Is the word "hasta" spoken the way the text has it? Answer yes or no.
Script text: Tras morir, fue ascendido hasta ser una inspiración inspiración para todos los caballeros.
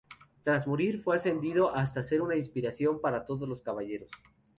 yes